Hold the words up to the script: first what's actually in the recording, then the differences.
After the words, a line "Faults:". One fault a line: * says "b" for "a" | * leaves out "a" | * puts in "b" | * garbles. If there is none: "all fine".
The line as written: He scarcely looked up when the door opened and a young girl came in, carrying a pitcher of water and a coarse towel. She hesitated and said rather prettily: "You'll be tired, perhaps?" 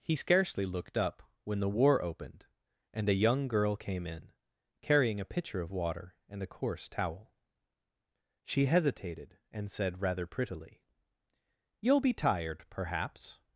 He scarcely looked up when the war opened and a young girl came in, carrying a pitcher of water and a coarse towel. She hesitated and said rather prettily: "You'll be tired, perhaps?"
Faults:
* says "war" for "door"